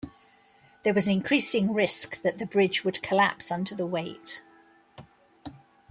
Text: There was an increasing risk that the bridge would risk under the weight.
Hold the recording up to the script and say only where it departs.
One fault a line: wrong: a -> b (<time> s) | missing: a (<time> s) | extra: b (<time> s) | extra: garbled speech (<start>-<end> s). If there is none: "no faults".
wrong: risk -> collapse (3.0 s)